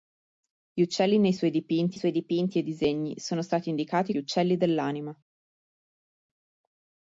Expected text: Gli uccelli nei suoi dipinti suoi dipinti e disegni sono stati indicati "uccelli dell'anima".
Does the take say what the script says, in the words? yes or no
yes